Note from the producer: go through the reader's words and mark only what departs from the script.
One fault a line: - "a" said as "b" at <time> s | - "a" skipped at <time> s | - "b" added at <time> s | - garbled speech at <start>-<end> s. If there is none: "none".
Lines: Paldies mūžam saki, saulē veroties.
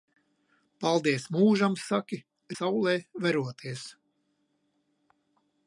none